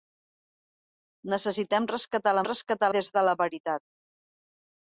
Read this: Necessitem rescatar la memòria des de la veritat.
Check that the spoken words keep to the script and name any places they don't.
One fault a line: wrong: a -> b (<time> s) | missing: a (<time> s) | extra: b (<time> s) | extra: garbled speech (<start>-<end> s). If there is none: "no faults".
wrong: memòria -> rescatar (2.5 s)